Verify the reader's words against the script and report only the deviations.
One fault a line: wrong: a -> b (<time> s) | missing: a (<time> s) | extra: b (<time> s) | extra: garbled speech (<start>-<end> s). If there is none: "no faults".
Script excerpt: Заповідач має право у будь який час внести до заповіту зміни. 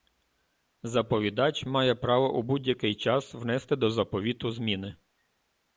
no faults